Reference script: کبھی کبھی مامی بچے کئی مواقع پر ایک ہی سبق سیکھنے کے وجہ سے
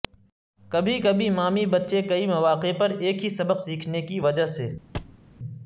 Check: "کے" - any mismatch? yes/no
yes